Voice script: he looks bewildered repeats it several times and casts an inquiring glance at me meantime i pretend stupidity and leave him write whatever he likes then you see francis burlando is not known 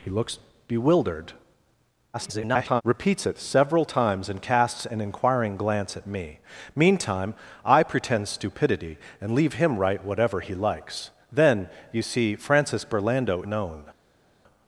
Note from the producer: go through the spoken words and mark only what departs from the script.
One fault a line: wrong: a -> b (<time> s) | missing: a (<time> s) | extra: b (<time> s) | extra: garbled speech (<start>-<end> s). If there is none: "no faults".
extra: garbled speech (2.1-2.8 s)
missing: is not (13.4 s)